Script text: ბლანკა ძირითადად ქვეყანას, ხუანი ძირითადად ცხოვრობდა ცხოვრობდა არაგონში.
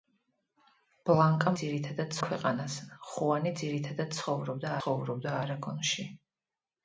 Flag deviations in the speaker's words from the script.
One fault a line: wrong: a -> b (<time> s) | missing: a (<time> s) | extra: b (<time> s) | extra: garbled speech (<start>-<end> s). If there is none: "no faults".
no faults